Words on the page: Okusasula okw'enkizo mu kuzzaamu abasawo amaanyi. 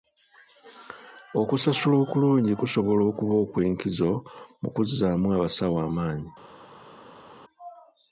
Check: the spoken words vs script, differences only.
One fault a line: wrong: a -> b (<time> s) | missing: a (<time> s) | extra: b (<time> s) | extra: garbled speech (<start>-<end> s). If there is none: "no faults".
extra: okulungi kusobola okuba (2.0 s)